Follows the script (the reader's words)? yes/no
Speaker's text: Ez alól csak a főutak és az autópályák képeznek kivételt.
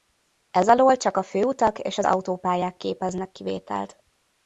yes